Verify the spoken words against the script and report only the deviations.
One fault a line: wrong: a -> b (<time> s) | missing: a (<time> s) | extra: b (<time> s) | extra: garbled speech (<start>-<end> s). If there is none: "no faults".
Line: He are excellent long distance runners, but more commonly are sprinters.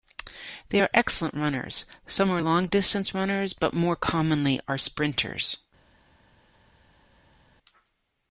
wrong: He -> They (0.7 s)
extra: runners some are (1.3 s)